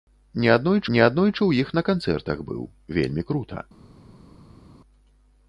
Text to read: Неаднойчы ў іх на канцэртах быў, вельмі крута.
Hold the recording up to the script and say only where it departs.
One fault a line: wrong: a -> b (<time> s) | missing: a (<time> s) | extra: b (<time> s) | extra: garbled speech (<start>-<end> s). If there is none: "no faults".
extra: неаднойчы (0.9 s)